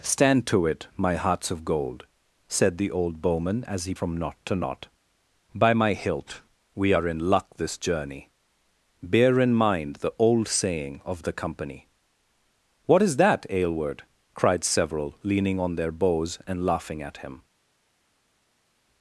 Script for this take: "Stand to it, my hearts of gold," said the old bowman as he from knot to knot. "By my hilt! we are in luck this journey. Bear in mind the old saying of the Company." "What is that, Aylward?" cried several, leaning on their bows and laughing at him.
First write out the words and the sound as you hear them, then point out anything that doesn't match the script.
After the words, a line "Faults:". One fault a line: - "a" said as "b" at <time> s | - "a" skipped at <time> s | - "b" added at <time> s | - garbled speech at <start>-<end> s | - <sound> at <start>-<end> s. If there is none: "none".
"Stand to it, my hearts of gold," said the old bowman as he from knot to knot. "By my hilt! we are in luck this journey. Bear in mind the old saying of the Company." "What is that, Aylward?" cried several, leaning on their bows and laughing at him.
Faults:
none